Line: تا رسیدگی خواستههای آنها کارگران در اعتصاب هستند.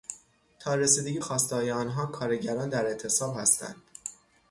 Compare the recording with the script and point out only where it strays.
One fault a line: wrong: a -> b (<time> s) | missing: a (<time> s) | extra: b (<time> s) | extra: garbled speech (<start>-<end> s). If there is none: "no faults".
no faults